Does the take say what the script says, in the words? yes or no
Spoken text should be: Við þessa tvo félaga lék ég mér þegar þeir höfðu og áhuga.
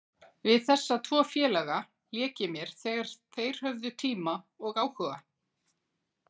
no